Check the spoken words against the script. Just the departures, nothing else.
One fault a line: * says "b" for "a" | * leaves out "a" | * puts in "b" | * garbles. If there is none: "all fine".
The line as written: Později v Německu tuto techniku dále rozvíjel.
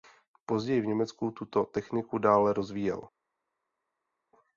all fine